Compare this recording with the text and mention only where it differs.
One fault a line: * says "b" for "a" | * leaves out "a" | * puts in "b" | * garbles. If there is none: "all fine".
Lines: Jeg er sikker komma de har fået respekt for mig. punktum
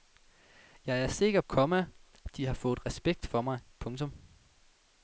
all fine